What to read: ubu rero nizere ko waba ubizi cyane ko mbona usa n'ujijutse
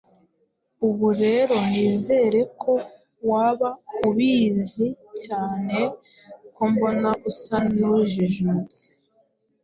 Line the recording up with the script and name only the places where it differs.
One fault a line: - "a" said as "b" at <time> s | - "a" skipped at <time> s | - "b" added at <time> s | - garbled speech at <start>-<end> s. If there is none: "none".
none